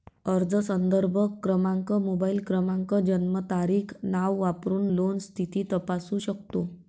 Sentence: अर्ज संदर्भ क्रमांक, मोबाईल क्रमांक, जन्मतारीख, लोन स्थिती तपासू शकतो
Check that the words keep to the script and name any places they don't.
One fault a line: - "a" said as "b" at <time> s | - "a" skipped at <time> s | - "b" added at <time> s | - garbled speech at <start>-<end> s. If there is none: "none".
- "नाव वापरून" added at 4.1 s